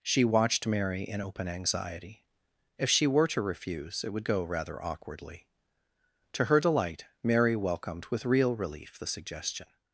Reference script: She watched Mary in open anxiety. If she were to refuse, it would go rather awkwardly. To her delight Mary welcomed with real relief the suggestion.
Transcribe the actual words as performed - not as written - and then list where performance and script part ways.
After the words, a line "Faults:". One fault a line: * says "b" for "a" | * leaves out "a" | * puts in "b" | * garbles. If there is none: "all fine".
She watched Mary in open anxiety. If she were to refuse, it would go rather awkwardly. To her delight Mary welcomed with real relief the suggestion.
Faults:
all fine